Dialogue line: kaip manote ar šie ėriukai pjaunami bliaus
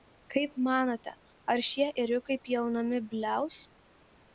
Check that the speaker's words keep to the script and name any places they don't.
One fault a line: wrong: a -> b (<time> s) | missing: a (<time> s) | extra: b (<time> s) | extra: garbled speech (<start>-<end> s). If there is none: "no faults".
no faults